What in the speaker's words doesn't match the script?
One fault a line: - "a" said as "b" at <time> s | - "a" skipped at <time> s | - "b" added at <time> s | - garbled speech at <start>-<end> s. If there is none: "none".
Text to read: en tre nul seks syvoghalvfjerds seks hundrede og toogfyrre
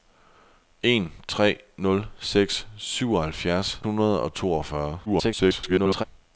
- "seks" skipped at 3.8 s
- garbled speech at 5.1-6.0 s